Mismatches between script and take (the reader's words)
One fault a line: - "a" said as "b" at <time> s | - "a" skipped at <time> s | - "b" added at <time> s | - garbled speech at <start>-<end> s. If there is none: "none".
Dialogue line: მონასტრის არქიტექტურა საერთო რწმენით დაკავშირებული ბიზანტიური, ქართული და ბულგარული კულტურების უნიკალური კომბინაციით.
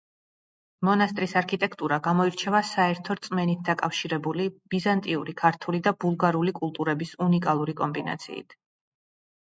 - "გამოირჩევა" added at 2.1 s